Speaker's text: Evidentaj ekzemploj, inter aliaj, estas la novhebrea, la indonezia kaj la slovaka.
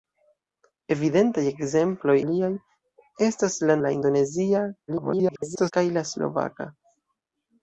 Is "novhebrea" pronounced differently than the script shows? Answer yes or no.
yes